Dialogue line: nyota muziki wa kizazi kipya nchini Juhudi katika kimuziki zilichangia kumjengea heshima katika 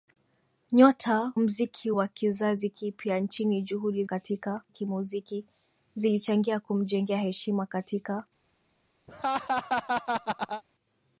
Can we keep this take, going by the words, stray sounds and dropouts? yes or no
no